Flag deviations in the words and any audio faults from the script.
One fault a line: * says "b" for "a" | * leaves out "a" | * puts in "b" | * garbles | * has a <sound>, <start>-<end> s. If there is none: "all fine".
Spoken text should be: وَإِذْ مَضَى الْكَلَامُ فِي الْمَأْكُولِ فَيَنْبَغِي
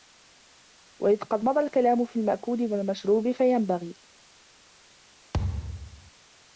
* puts in "قَدْ"
* puts in "وَالْمَشْرُوبِ"
* has a thud, 5.3-6.1 s